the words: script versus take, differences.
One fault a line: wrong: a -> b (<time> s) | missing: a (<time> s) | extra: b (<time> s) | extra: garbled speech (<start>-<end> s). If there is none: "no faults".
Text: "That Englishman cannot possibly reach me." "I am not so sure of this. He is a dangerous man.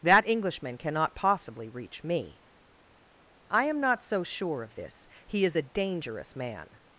no faults